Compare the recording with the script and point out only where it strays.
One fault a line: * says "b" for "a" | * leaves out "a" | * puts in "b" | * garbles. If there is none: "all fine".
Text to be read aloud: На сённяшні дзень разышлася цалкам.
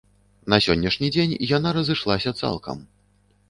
* puts in "яна"